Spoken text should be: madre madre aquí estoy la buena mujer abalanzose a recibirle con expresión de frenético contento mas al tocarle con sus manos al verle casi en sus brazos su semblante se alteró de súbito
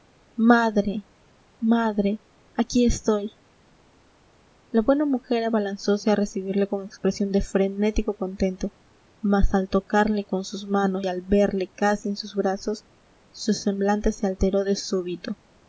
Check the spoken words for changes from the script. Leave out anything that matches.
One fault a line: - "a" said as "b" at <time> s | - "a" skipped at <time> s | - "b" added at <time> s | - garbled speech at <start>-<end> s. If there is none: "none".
none